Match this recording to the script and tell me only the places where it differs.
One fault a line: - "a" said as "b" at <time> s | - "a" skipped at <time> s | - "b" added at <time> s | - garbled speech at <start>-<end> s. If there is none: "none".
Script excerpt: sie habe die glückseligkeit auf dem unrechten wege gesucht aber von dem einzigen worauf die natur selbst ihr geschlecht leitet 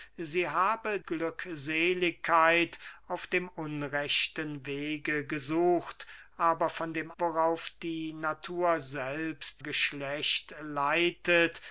- "die" skipped at 1.0 s
- "einzigen" skipped at 7.1 s
- "ihr" skipped at 9.6 s